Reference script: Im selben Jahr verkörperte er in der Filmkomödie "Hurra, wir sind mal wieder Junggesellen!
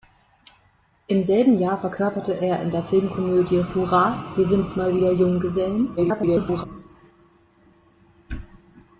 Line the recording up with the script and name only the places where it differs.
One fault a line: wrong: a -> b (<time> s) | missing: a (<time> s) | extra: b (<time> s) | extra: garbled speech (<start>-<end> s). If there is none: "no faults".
extra: garbled speech (6.0-6.6 s)